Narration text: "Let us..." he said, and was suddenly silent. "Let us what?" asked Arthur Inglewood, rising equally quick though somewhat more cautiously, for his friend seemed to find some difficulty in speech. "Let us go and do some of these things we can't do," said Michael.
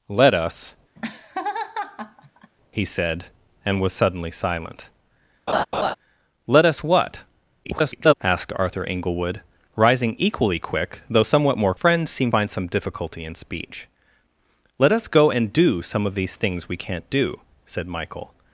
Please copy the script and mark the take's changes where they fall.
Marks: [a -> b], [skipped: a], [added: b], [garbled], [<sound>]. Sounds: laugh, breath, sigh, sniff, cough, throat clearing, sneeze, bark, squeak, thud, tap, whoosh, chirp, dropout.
"Let us..." [laugh] he said, and was suddenly silent. [laugh] "Let us what?" [garbled] asked Arthur Inglewood, rising equally quick though somewhat more [skipped: cautiously, for his] friend seemed [skipped: to] find some difficulty in speech. "Let us go and do some of these things we can't do," said Michael.